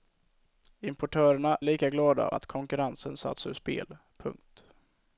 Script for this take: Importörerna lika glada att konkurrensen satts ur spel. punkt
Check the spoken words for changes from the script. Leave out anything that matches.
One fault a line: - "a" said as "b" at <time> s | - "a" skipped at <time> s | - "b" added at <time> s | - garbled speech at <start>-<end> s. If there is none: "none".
none